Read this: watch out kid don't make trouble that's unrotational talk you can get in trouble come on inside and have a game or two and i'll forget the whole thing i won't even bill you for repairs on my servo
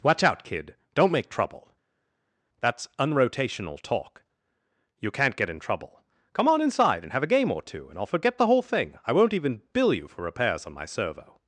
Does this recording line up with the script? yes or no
no